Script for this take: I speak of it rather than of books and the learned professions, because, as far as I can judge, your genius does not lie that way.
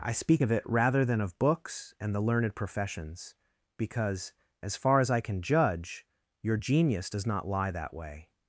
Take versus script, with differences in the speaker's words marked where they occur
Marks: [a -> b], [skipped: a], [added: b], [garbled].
I speak of it rather than of books and the learned professions, because, as far as I can judge, your genius does not lie that way.